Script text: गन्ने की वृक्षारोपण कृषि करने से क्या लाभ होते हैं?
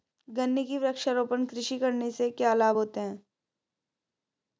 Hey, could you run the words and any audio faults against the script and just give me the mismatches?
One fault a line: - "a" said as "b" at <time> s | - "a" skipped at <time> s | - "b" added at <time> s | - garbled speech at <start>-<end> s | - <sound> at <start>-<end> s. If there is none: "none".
none